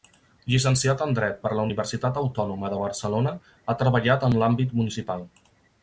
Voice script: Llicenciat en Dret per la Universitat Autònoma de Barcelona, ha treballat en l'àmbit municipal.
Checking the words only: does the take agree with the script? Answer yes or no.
yes